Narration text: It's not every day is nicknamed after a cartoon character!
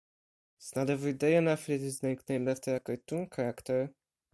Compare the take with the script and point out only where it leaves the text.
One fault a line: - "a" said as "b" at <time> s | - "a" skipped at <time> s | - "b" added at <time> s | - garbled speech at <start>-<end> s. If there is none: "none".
- "an athlete" added at 1.4 s